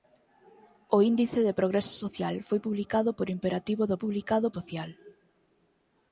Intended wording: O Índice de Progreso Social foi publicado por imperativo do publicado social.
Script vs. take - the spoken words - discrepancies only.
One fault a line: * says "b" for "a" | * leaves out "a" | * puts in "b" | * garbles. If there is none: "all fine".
all fine